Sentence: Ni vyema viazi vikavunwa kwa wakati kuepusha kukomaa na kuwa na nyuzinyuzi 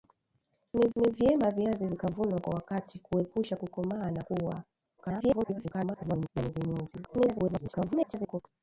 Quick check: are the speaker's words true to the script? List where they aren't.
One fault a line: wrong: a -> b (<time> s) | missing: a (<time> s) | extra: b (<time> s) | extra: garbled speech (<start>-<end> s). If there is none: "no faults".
extra: ni (1.0 s)
extra: garbled speech (5.0-6.3 s)
extra: garbled speech (7.0-8.4 s)